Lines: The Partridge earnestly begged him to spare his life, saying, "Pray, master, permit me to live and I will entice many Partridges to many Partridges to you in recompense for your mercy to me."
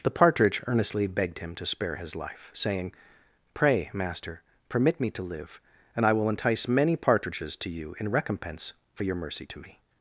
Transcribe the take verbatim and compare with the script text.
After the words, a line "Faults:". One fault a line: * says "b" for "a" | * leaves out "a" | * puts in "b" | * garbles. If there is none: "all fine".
The Partridge earnestly begged him to spare his life, saying, "Pray, master, permit me to live and I will entice many Partridges to you in recompense for your mercy to me."
Faults:
* leaves out "many Partridges to"